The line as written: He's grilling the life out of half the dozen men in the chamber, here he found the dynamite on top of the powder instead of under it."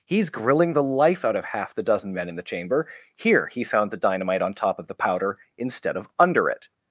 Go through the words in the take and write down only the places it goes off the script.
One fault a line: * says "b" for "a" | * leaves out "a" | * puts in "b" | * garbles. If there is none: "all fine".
all fine